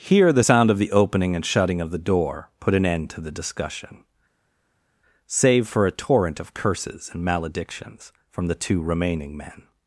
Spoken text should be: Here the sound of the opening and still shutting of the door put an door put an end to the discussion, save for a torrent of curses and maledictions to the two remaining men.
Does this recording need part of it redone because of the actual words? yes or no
yes